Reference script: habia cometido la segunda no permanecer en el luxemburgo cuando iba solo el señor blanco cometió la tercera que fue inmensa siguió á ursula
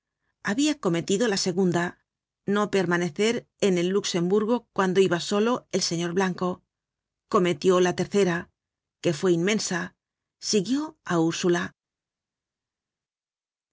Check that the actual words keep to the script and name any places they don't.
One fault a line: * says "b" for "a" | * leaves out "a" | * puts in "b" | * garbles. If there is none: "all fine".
all fine